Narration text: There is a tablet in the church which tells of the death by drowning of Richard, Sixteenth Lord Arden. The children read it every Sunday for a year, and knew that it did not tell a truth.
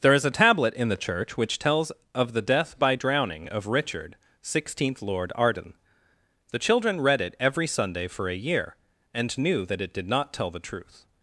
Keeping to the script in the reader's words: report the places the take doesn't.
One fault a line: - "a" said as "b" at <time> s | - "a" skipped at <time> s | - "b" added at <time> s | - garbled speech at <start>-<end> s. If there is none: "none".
- "a" said as "the" at 10.5 s